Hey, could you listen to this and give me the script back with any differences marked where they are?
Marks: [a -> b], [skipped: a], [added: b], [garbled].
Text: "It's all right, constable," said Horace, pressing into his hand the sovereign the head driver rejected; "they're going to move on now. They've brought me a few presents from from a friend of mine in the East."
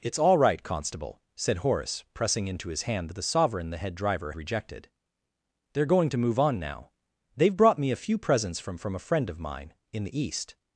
"It's all right, constable," said Horace, pressing into his hand the sovereign the head driver rejected; "they're going to move on now. They've brought me a few presents from from a friend of mine in the East."